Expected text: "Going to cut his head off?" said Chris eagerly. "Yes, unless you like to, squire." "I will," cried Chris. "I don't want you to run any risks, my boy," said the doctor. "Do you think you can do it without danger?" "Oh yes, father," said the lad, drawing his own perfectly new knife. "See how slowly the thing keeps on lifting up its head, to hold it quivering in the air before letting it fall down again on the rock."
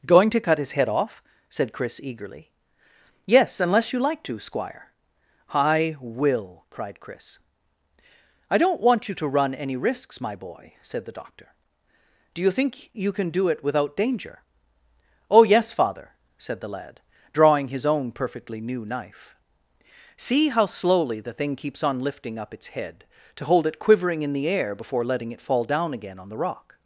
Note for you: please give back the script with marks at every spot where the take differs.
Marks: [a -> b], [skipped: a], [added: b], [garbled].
"Going to cut his head off?" said Chris eagerly. "Yes, unless you like to, squire." "I will," cried Chris. "I don't want you to run any risks, my boy," said the doctor. "Do you think you can do it without danger?" "Oh yes, father," said the lad, drawing his own perfectly new knife. "See how slowly the thing keeps on lifting up its head, to hold it quivering in the air before letting it fall down again on the rock."